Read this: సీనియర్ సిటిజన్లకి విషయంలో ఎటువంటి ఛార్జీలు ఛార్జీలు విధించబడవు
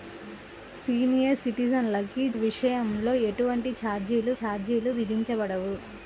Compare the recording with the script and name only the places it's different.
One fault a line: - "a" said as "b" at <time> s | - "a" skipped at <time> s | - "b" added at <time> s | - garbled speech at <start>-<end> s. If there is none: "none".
none